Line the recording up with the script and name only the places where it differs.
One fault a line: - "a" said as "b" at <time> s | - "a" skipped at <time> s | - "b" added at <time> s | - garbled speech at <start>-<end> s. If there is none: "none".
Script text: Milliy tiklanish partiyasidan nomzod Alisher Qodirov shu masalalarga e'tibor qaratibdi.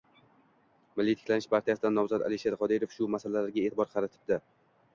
none